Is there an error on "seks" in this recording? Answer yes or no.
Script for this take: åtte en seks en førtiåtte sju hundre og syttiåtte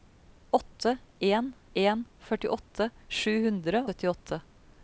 yes